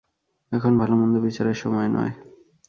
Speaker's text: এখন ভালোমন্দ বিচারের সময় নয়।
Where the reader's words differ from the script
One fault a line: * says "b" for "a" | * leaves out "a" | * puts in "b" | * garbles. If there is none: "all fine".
all fine